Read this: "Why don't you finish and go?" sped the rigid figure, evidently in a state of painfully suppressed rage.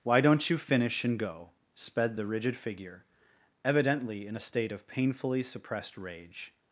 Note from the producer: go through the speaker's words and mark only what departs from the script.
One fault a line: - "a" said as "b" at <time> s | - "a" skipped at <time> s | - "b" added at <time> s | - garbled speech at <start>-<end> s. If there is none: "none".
none